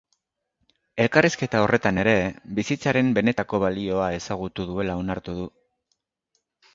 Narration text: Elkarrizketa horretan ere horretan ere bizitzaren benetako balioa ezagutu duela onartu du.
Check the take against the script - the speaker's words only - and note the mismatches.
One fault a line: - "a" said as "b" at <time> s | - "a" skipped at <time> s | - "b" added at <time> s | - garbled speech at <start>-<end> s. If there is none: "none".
- "horretan ere" skipped at 2.1 s